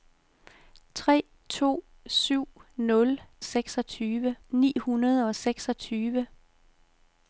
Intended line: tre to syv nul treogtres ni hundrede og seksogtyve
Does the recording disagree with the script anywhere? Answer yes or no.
yes